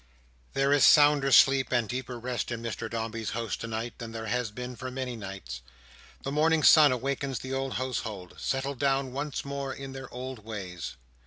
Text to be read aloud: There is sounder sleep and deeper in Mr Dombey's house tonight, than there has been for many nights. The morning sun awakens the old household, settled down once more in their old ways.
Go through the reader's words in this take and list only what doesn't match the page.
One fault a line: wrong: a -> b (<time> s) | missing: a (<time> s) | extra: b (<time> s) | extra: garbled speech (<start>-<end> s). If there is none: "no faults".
extra: rest (2.2 s)